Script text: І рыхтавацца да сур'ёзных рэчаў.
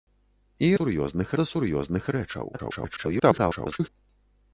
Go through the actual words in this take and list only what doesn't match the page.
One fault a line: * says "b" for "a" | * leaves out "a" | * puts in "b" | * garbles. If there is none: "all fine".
* says "сур'ёзных" for "рыхтавацца"
* garbles